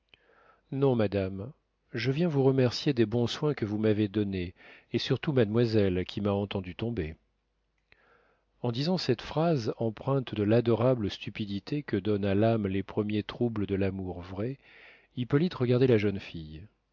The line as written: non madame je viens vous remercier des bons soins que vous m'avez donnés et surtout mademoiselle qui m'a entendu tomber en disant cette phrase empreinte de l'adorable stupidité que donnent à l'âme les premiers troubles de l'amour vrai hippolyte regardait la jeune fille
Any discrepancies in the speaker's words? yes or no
no